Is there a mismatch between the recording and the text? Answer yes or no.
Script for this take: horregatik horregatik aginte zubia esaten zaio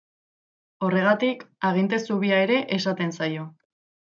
yes